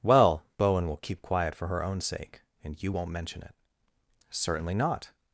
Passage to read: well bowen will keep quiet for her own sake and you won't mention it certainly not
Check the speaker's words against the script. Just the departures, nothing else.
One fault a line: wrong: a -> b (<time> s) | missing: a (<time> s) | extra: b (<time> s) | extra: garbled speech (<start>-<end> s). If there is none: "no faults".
no faults